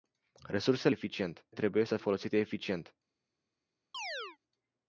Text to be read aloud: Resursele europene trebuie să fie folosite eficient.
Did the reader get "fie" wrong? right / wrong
wrong